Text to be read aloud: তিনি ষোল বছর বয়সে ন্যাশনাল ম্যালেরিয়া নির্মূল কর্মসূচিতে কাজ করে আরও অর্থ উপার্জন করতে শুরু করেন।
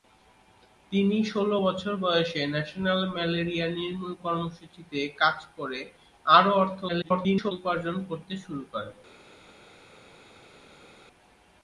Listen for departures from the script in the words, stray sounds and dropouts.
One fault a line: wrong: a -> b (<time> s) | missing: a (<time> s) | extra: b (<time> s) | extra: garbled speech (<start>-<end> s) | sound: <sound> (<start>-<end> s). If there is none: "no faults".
extra: garbled speech (6.9-7.5 s)